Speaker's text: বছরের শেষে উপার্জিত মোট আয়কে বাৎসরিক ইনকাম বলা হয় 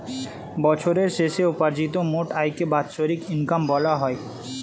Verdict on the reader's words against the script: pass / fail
pass